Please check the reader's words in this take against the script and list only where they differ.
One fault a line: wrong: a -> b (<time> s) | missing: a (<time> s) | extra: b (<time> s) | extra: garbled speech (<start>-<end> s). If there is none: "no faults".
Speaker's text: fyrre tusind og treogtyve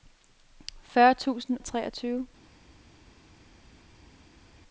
no faults